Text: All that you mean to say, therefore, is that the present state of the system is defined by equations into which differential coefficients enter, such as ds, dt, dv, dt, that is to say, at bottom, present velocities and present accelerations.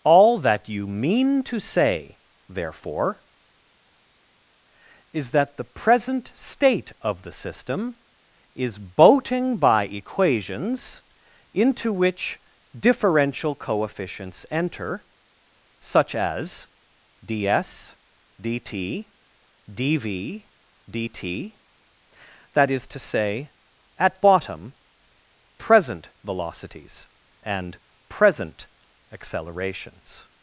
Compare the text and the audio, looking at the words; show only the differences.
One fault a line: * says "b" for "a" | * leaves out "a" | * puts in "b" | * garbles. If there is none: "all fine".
* says "boating" for "defined"